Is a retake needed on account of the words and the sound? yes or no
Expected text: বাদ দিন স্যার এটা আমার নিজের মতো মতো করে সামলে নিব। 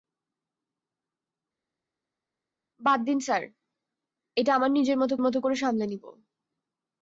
no